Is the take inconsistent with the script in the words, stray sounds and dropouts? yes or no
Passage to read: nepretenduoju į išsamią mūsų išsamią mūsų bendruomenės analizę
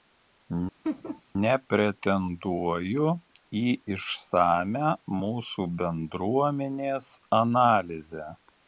yes